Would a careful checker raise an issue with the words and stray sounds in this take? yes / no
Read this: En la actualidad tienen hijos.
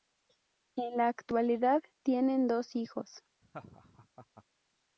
yes